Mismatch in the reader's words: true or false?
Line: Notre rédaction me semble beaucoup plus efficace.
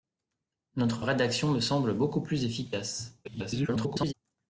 true